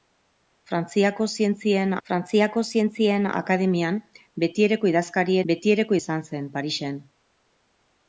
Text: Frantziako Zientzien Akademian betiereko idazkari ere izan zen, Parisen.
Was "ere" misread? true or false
true